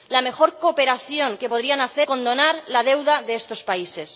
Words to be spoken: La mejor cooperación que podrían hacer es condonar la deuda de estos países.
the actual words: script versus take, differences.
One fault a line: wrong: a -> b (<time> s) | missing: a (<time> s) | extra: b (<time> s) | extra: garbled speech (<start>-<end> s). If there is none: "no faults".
missing: es (2.1 s)